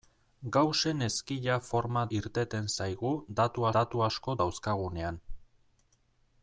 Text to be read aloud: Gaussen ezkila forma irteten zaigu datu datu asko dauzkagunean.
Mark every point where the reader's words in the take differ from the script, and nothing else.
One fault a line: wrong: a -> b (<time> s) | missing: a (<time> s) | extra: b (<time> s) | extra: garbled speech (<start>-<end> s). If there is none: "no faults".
no faults